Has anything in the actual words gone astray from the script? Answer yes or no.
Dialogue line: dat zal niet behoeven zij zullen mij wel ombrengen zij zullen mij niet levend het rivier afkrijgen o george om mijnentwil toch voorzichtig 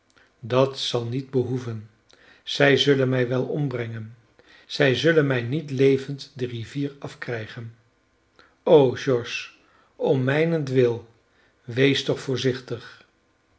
yes